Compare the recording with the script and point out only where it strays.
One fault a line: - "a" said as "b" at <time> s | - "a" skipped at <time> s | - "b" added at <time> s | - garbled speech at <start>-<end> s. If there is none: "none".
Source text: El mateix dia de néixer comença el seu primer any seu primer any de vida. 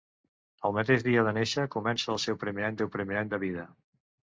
none